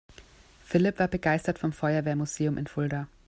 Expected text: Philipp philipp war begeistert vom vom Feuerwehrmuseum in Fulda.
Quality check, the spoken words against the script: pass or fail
fail